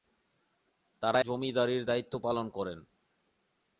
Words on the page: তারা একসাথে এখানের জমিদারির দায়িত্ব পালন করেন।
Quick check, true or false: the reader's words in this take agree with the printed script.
false